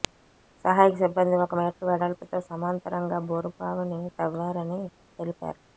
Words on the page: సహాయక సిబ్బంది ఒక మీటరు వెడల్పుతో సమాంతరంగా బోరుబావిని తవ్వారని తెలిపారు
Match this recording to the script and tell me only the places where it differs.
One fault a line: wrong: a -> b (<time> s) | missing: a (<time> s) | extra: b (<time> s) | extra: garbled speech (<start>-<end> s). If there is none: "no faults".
no faults